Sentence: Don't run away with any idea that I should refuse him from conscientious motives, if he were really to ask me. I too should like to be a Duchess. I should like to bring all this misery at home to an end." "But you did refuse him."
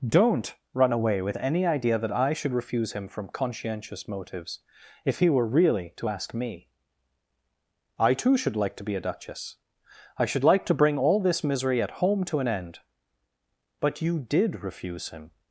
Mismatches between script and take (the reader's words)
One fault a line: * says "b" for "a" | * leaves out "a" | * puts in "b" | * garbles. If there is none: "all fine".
all fine